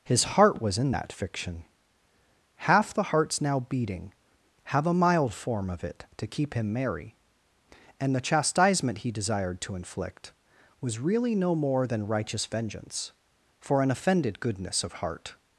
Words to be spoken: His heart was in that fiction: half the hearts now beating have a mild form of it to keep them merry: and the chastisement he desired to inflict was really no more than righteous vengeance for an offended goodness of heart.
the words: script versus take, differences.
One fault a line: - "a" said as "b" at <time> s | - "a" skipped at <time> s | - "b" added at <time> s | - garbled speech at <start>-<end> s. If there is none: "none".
- "them" said as "him" at 6.5 s